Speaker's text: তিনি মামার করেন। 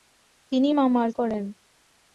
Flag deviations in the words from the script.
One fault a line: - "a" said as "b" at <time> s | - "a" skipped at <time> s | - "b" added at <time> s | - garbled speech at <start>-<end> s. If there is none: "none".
none